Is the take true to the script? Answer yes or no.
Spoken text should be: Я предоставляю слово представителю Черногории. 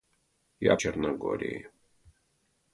no